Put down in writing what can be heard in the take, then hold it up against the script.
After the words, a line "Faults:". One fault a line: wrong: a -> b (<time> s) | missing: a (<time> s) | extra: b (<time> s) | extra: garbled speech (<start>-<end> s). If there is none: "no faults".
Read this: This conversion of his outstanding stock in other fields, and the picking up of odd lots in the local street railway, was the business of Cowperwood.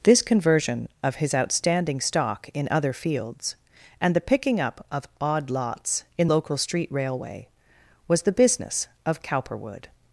This conversion of his outstanding stock in other fields, and the picking up of odd lots in local street railway, was the business of Cowperwood.
Faults:
missing: the (6.3 s)